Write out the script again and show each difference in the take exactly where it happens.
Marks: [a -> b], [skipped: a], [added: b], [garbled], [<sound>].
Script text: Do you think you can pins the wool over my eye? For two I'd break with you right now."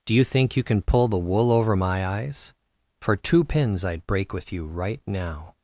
Do you think you can [pins -> pull] the wool over my [eye? -> eyes] For two [added: pins] I'd break with you right now."